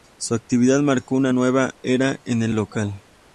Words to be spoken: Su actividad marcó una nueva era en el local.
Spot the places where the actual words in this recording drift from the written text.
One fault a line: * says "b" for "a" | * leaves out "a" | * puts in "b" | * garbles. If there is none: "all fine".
all fine